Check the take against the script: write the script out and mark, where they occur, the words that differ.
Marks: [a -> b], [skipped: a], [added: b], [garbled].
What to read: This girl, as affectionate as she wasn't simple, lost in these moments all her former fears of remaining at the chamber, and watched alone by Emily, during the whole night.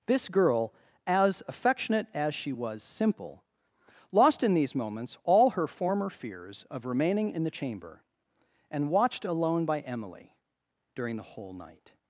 This girl, as affectionate as she [wasn't -> was] simple, lost in these moments all her former fears of remaining [at -> in] the chamber, and watched alone by Emily, during the whole night.